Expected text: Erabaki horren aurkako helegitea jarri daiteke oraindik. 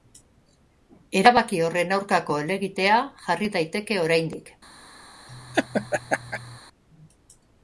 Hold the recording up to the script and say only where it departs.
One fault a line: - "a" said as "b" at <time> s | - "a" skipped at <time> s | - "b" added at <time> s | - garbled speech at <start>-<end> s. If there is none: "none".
none